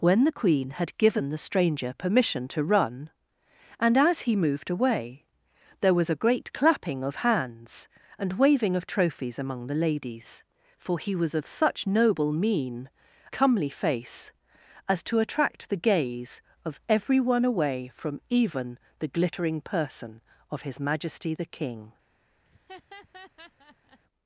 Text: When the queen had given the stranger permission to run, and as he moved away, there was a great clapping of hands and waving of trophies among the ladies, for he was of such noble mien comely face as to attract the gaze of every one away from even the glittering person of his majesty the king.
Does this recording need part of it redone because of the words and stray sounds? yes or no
yes